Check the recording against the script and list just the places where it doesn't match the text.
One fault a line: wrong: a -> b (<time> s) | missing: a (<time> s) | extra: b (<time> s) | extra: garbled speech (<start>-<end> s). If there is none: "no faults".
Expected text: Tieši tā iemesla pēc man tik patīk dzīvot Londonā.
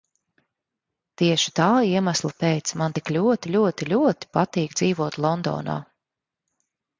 extra: ļoti ļoti ļoti (3.2 s)